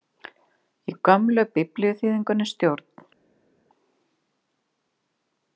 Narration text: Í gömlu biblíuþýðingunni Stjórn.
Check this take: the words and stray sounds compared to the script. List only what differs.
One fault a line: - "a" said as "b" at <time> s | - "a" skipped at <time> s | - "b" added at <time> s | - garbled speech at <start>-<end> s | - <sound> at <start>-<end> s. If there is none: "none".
none